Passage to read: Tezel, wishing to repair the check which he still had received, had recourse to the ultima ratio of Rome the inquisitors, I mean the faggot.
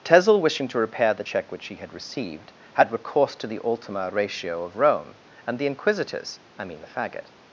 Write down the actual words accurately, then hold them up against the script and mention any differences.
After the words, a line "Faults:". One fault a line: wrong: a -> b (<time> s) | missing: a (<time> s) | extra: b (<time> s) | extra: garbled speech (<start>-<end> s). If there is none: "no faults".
Tezel, wishing to repair the check which he had received, had recourse to the ultima ratio of Rome and the inquisitors, I mean the faggot.
Faults:
missing: still (1.7 s)
extra: and (5.4 s)